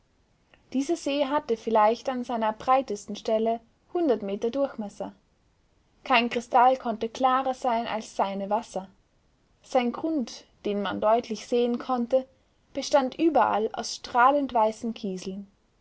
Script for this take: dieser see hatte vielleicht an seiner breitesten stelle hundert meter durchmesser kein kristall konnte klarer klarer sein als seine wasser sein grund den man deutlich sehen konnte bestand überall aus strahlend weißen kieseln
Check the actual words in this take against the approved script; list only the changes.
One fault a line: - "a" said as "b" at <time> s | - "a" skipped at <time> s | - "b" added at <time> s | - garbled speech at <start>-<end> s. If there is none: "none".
- "klarer" skipped at 7.5 s